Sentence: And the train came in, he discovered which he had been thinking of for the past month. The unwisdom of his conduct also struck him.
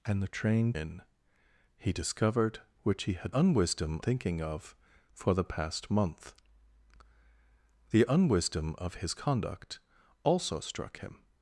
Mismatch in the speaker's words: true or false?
true